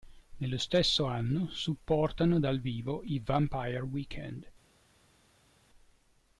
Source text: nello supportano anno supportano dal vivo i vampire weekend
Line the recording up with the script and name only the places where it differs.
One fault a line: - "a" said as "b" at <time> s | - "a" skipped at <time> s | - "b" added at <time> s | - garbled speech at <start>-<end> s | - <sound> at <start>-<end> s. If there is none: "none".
- "supportano" said as "stesso" at 0.6 s